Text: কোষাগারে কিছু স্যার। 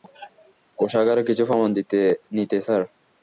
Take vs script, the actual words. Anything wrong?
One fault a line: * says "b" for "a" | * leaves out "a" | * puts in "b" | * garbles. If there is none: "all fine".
* puts in "প্রমাণ নিতে"